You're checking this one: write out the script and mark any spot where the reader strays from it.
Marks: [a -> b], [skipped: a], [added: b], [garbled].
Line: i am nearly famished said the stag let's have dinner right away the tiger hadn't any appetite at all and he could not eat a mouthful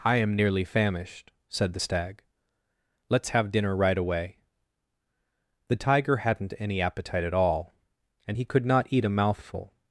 i am nearly famished said the stag let's have dinner right away the tiger hadn't any appetite at all and he could not eat a mouthful